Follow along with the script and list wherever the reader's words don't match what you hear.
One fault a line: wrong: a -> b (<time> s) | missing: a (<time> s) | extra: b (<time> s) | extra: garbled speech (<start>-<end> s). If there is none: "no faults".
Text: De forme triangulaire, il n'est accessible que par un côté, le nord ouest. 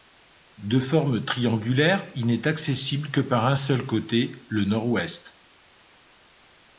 extra: seul (3.5 s)